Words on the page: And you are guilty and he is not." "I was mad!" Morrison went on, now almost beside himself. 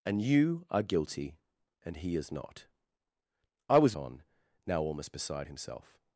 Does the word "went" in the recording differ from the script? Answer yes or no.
yes